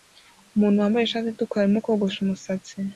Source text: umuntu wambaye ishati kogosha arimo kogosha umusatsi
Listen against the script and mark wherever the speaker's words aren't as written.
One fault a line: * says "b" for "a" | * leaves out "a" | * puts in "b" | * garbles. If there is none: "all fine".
* says "itukura" for "kogosha"